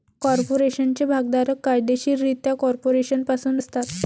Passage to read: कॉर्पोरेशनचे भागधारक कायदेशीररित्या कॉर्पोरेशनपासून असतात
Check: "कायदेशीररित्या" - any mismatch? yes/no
no